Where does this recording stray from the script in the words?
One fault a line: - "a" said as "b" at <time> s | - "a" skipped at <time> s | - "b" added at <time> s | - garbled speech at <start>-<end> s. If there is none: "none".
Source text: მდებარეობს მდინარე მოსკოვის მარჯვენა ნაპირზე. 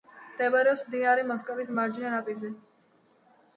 none